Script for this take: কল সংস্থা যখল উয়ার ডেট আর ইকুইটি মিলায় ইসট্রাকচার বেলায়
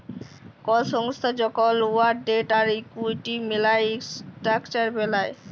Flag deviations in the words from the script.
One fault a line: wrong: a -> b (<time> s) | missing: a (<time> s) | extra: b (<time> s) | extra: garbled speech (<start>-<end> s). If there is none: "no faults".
no faults